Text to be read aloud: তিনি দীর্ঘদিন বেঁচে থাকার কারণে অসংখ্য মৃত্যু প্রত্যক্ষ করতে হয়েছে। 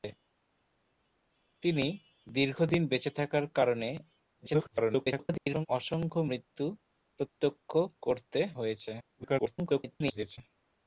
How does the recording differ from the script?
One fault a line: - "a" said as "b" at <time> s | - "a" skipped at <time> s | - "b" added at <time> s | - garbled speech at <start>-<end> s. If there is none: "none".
- garbled speech at 4.2-5.7 s
- garbled speech at 9.0-10.4 s